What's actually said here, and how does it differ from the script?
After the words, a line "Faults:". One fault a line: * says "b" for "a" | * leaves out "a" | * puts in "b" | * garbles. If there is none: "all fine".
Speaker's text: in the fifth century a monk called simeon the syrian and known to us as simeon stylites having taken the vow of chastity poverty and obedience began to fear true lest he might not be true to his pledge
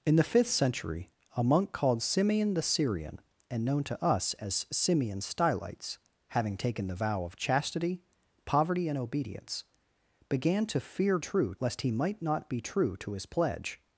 in the fifth century a monk called simeon the syrian and known to us as simeon stylites having taken the vow of chastity poverty and obedience began to fear true lest he might not be true to his pledge
Faults:
all fine